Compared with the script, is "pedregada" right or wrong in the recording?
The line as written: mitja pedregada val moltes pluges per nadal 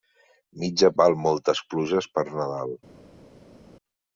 wrong